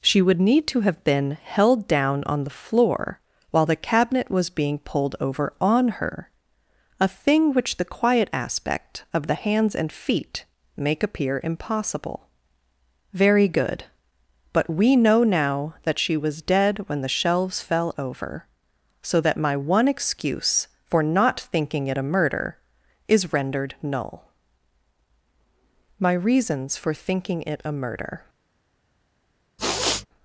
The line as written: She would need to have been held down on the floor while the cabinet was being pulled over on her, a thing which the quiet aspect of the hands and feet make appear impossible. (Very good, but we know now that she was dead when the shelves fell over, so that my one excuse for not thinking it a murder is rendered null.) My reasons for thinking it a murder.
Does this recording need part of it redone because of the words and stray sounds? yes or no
yes